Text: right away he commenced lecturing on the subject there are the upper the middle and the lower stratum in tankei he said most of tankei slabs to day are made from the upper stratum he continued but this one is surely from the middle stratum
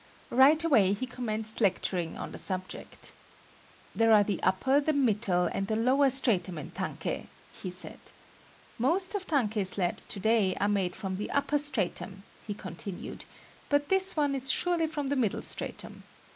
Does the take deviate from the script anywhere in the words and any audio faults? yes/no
no